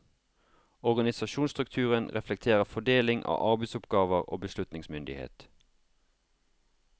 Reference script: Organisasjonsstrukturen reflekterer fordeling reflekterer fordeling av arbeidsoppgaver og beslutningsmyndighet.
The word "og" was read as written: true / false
true